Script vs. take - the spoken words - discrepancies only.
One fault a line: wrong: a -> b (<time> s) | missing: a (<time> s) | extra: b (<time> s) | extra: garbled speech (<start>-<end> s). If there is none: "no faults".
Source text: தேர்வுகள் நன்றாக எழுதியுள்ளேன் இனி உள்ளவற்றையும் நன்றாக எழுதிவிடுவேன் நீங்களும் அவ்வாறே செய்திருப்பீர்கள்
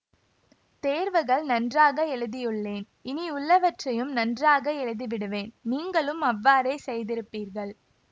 no faults